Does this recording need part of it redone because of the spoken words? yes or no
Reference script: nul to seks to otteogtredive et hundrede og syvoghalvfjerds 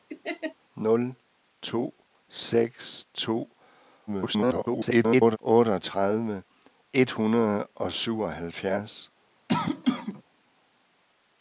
yes